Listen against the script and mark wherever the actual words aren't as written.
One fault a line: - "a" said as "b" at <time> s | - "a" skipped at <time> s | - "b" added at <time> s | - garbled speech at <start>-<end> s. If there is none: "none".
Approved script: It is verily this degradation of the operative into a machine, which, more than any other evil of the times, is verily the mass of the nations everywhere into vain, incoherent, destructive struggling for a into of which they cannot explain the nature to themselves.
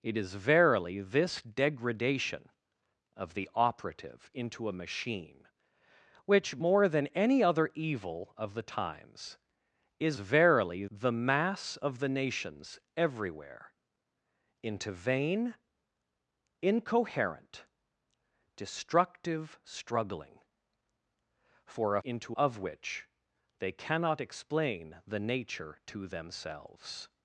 none